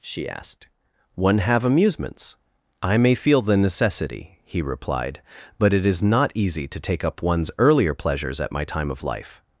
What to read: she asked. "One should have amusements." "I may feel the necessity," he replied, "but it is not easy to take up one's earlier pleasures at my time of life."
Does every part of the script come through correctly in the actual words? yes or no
no